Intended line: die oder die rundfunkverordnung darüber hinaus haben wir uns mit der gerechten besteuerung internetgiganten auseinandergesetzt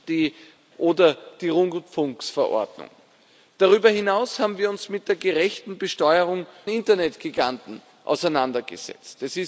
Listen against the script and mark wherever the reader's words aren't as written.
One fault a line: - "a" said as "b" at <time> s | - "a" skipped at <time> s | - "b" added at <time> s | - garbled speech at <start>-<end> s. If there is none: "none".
none